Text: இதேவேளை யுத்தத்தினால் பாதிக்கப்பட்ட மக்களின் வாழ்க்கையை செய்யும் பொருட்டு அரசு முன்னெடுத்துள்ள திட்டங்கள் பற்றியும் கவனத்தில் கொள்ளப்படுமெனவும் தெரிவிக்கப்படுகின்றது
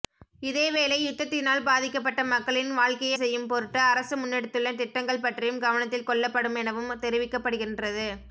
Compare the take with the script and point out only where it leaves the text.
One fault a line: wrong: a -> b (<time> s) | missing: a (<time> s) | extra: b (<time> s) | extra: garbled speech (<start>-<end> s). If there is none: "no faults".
no faults